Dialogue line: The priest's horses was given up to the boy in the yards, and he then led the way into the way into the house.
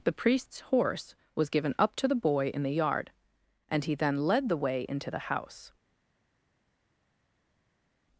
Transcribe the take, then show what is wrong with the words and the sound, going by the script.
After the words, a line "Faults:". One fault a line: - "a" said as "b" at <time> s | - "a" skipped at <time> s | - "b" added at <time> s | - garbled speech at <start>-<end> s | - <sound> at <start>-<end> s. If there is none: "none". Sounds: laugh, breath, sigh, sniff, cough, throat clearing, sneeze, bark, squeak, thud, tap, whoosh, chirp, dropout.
The priest's horse was given up to the boy in the yard, and he then led the way into the house.
Faults:
- "horses" said as "horse" at 0.6 s
- "yards" said as "yard" at 2.7 s
- "way into the" skipped at 5.3 s